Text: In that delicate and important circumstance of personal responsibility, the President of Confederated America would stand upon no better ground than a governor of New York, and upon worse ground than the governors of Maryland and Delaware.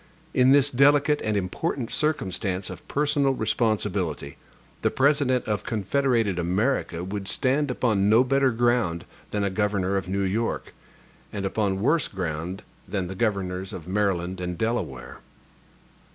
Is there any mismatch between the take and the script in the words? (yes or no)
yes